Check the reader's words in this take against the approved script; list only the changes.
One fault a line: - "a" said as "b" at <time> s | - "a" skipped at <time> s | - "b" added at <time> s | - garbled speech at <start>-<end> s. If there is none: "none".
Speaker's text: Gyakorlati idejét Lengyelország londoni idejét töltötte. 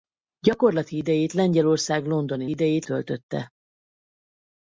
none